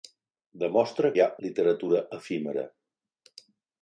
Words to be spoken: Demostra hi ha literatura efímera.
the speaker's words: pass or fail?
pass